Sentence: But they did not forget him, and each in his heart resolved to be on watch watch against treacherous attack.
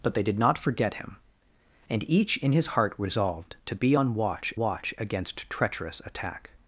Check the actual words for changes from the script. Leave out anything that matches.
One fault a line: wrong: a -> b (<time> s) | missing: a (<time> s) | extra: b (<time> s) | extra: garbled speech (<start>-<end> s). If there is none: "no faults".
no faults